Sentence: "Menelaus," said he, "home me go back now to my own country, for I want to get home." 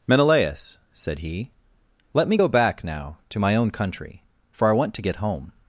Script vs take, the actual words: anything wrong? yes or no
yes